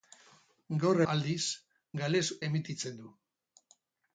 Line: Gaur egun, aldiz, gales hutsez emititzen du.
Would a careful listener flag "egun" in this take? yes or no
yes